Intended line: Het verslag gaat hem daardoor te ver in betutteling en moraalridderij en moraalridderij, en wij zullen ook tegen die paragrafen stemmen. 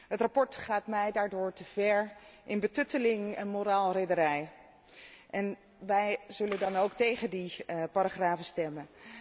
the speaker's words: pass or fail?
fail